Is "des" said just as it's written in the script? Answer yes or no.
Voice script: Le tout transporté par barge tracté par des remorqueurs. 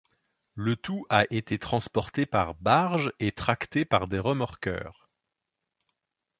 yes